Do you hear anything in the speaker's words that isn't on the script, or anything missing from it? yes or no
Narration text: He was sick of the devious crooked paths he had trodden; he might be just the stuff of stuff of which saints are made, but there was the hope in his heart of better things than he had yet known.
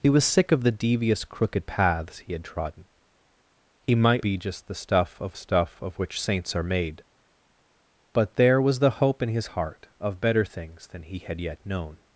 no